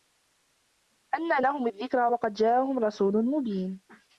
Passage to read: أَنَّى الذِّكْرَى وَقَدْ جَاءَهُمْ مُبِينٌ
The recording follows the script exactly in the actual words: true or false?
false